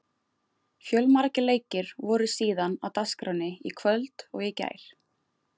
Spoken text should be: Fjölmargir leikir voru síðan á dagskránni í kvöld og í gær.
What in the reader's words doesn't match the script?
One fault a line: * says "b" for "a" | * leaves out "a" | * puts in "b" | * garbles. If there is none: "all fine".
all fine